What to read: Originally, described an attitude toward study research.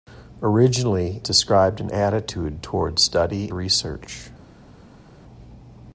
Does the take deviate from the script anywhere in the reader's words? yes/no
no